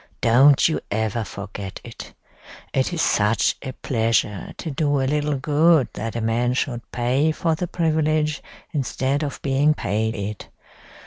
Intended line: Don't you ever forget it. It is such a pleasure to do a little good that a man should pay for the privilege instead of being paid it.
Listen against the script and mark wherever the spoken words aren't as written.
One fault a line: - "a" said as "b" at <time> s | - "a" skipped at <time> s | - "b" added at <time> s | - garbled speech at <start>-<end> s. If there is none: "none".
none